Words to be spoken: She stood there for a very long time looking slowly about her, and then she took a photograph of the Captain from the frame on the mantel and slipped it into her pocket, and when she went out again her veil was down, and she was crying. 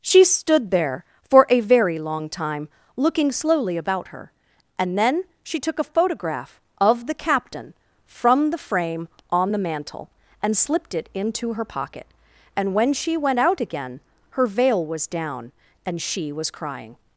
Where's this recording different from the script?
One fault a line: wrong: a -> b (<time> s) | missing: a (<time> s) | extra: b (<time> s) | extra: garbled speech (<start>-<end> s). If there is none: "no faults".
no faults